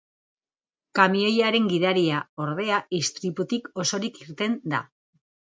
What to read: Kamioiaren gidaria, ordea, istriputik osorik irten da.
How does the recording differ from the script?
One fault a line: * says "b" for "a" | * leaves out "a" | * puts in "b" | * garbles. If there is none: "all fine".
all fine